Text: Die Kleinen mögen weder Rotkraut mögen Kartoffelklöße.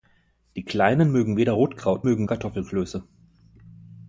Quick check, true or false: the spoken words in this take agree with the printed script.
true